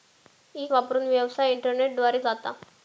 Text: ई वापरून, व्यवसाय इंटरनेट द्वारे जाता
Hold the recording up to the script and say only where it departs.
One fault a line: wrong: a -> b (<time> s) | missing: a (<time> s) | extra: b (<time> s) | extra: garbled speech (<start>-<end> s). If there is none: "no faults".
no faults